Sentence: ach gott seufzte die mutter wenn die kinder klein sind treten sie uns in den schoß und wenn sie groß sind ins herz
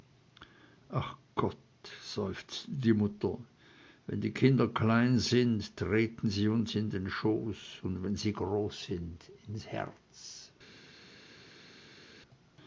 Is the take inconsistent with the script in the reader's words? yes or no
no